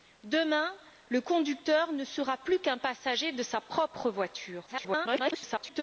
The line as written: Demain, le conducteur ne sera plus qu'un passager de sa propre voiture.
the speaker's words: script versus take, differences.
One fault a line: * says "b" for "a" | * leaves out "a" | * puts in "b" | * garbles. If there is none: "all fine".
* garbles